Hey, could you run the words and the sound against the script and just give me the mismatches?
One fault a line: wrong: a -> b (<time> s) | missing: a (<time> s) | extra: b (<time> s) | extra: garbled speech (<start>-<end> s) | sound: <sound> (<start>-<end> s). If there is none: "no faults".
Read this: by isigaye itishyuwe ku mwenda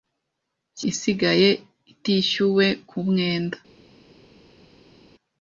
no faults